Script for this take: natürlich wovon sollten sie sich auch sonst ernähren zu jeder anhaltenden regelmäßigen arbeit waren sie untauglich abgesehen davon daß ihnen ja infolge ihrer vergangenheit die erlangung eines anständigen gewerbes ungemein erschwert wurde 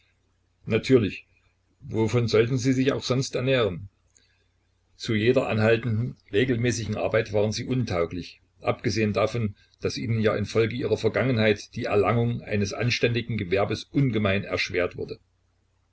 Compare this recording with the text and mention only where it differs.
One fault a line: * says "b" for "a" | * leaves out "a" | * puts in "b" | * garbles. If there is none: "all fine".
all fine